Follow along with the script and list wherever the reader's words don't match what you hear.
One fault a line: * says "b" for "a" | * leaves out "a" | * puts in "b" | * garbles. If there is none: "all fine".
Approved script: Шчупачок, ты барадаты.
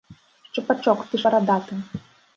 all fine